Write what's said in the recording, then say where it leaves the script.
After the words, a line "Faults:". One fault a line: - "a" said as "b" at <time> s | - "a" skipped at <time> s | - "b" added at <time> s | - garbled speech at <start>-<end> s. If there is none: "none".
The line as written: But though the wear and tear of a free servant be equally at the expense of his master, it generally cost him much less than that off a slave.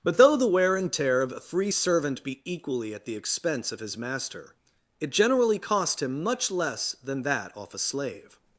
But though the wear and tear of a free servant be equally at the expense of his master, it generally cost him much less than that off a slave.
Faults:
none